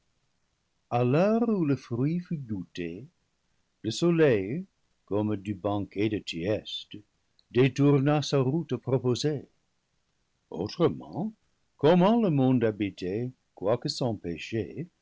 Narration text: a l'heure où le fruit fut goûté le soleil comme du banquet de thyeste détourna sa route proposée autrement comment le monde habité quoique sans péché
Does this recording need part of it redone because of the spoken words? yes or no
no